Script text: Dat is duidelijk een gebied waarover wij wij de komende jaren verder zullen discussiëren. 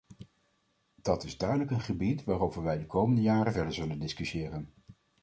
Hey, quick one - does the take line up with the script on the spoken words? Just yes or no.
no